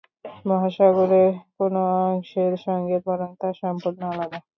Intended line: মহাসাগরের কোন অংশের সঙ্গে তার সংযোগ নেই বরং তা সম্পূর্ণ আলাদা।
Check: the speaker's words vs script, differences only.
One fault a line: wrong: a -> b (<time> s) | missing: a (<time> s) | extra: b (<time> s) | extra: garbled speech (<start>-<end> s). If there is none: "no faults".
missing: তার সংযোগ নেই (3.0 s)